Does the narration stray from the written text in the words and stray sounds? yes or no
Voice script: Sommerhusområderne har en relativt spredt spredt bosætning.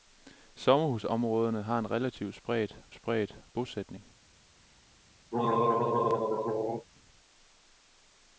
yes